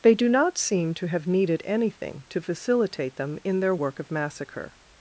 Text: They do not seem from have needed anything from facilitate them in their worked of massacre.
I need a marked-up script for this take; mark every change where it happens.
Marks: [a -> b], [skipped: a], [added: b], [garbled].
They do not seem [from -> to] have needed anything [from -> to] facilitate them in their [worked -> work] of massacre.